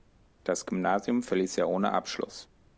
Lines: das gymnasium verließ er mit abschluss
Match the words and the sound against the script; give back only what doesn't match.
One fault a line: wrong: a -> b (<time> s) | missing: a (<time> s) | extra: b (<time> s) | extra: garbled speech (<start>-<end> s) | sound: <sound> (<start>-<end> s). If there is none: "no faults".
wrong: mit -> ohne (1.7 s)